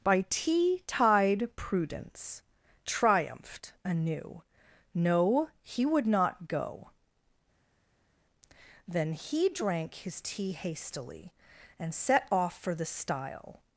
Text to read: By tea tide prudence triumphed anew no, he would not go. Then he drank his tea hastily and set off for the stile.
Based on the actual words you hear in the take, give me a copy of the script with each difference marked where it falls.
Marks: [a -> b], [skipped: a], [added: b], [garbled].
By tea tide prudence triumphed anew no, he would not go. Then he drank his tea hastily and set off for the stile.